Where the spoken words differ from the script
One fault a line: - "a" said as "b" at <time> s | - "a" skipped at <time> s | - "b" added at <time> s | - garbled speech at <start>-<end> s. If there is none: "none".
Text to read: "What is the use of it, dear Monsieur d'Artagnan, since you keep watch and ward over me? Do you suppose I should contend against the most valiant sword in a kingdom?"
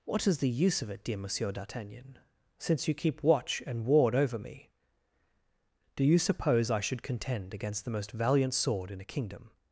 none